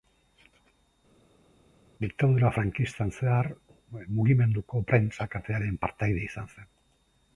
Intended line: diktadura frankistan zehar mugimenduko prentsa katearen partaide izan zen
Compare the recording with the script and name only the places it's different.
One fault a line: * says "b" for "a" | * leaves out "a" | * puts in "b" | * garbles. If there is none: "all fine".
all fine